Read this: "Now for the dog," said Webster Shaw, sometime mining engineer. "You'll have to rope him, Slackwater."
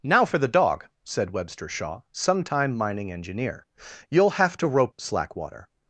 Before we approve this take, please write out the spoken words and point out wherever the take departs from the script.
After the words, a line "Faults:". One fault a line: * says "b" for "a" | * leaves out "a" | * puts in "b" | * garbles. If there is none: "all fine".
"Now for the dog," said Webster Shaw, sometime mining engineer. "You'll have to rope Slackwater."
Faults:
* leaves out "him"